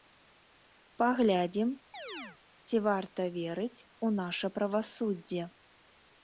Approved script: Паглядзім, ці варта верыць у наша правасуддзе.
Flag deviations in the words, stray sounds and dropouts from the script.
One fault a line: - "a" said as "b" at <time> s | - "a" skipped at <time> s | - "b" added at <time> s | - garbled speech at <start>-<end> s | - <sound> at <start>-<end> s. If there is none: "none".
- chirp at 1.9-2.4 s